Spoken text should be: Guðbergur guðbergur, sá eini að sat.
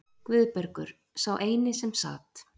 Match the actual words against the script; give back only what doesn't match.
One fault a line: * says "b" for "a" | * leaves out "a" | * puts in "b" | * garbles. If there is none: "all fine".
* leaves out "guðbergur"
* says "sem" for "að"